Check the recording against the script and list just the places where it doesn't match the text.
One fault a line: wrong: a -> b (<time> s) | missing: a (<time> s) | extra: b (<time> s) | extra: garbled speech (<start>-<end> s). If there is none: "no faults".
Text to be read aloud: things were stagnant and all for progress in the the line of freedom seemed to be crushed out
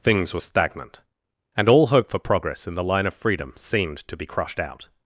extra: hope (1.9 s)
missing: the (2.8 s)